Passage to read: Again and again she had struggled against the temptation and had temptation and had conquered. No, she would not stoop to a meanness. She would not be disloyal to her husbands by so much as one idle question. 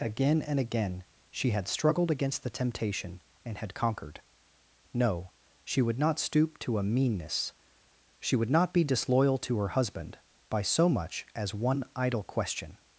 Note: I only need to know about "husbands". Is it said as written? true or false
false